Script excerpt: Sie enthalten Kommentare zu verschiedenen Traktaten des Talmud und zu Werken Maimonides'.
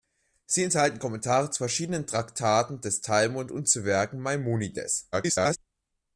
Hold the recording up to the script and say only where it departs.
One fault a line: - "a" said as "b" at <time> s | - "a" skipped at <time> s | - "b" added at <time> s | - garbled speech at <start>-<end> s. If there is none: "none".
- garbled speech at 5.1-5.6 s